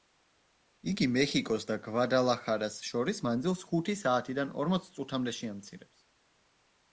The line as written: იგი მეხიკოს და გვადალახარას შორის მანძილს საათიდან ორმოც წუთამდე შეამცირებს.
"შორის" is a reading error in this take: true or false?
false